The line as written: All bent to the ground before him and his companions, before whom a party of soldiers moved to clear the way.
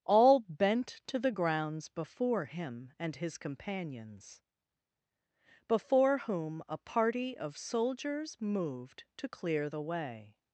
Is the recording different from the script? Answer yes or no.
yes